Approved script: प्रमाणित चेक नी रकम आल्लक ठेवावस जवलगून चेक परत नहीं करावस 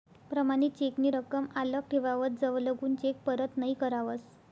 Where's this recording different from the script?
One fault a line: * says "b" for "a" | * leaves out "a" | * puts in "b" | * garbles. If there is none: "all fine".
all fine